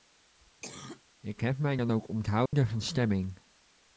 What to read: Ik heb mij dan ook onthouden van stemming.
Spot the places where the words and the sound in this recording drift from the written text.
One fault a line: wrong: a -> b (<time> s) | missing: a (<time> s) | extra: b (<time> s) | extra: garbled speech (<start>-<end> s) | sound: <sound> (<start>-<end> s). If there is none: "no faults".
sound: cough (0.6-1.0 s)
sound: dropout (2.5-2.5 s)